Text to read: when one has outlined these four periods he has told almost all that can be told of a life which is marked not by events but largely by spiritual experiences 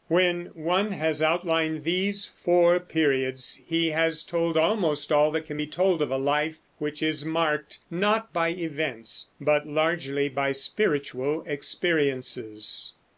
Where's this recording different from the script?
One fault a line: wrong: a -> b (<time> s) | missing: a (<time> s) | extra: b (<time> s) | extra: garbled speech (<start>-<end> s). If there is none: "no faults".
no faults